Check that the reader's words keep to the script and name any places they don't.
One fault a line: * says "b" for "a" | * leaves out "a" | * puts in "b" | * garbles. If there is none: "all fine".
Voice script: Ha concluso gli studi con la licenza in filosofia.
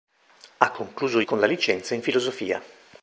* leaves out "gli studi"